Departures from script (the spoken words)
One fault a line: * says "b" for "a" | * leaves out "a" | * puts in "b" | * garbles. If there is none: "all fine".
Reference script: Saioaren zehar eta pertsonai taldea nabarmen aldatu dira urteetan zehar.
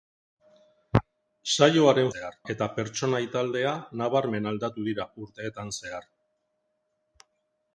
all fine